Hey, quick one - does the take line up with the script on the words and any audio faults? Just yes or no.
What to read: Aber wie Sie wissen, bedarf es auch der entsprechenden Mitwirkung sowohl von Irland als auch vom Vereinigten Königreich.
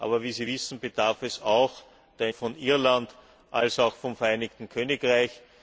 no